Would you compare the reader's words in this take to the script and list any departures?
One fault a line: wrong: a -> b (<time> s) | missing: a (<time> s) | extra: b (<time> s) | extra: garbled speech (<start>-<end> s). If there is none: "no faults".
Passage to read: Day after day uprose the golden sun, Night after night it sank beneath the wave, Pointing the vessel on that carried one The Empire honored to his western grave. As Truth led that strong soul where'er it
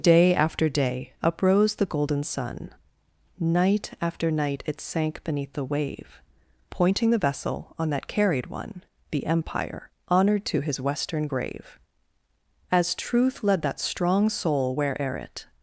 no faults